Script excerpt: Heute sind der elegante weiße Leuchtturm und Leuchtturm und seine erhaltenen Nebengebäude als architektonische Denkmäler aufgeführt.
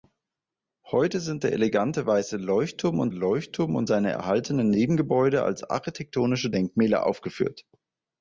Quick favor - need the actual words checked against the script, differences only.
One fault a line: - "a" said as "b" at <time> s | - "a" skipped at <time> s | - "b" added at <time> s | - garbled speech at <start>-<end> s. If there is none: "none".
none